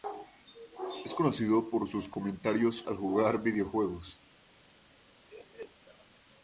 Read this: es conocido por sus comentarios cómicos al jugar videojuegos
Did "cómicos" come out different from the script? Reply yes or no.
yes